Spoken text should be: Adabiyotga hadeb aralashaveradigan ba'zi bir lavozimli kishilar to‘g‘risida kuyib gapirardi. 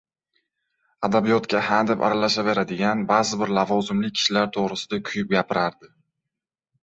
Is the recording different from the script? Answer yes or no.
no